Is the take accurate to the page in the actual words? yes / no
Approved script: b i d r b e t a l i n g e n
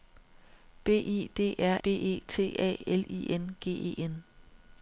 yes